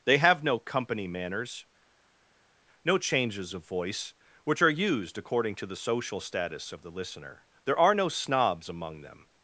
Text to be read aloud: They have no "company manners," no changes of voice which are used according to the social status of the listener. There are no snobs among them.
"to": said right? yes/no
yes